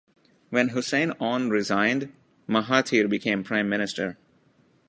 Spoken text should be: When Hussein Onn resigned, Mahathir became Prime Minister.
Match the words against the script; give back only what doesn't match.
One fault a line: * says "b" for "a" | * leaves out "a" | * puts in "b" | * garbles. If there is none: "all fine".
all fine